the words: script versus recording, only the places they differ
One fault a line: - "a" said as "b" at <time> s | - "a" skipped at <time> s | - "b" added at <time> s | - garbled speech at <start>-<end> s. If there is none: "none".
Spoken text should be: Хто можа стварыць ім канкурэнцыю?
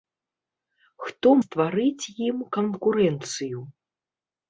- "можа" skipped at 1.3 s